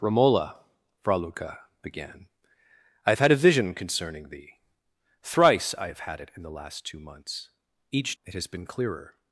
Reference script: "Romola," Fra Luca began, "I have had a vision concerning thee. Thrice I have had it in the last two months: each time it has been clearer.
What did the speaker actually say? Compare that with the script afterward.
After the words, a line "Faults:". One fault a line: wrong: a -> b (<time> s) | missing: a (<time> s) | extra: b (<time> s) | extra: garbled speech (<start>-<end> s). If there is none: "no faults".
"Romola," Fra Luca began, "I have had a vision concerning thee. Thrice I have had it in the last two months: each it has been clearer.
Faults:
missing: time (8.2 s)